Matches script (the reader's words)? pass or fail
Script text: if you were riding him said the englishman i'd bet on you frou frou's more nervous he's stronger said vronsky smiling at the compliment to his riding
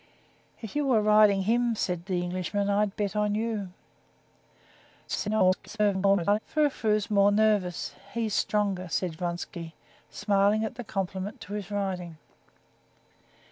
fail